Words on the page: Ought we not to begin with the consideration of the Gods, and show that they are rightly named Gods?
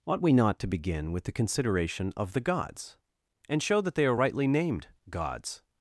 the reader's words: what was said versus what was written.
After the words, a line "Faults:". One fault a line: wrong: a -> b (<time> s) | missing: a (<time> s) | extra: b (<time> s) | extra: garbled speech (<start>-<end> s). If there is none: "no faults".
Ought we not to begin with the consideration of the Gods, and show that they are rightly named Gods?
Faults:
no faults